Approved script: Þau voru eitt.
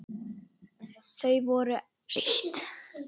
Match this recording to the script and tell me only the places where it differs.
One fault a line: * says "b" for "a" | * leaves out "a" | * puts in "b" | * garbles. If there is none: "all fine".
all fine